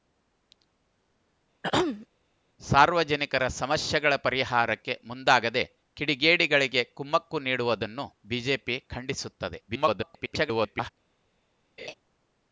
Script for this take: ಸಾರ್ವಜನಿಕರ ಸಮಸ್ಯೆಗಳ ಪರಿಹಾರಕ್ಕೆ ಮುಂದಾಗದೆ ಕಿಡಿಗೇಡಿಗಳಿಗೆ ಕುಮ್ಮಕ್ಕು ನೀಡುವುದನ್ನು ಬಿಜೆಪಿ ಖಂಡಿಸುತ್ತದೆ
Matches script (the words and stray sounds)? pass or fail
fail